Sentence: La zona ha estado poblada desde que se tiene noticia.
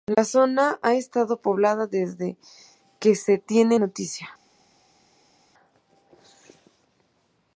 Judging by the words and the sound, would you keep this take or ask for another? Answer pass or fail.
pass